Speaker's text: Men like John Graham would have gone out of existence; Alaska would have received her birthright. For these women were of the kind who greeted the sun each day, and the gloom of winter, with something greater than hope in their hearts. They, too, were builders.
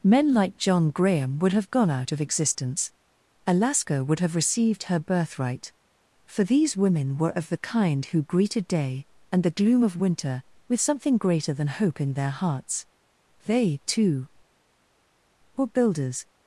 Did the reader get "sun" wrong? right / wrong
wrong